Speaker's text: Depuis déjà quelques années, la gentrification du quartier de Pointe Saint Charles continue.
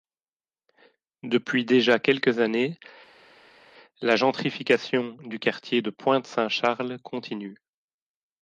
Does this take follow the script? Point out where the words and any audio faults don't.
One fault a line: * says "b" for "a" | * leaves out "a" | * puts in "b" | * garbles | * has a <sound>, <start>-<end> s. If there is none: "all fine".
all fine